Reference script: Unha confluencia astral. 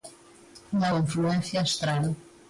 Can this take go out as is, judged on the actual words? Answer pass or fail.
pass